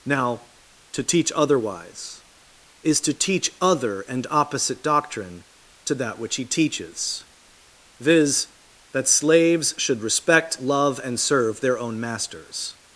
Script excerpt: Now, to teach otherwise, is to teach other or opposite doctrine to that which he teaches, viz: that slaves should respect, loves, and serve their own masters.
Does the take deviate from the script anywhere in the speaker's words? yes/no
yes